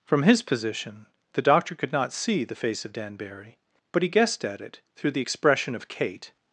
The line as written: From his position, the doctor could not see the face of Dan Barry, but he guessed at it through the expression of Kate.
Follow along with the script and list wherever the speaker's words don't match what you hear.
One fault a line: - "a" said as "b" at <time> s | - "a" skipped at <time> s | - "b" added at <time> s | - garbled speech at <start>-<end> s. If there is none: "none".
none